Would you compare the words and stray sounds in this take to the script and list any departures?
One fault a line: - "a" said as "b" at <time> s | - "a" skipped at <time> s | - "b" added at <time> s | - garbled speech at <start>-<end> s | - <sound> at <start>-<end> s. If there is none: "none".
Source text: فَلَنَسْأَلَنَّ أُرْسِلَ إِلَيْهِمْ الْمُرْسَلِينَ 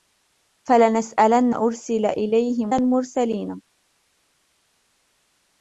none